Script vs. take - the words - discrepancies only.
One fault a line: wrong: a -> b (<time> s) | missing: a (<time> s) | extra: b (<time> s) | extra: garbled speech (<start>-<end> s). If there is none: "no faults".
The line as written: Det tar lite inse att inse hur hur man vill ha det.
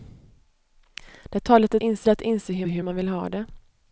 no faults